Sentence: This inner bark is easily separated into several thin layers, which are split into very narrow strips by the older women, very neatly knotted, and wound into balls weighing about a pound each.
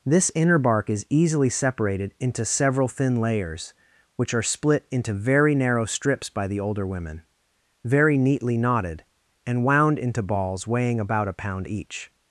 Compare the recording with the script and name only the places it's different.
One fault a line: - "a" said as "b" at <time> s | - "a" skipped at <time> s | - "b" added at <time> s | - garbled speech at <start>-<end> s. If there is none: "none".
none